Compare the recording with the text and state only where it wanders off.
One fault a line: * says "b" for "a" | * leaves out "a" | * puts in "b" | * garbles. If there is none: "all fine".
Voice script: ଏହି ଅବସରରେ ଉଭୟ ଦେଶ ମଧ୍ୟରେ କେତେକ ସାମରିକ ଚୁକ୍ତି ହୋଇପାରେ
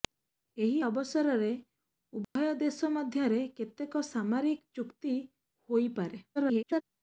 * garbles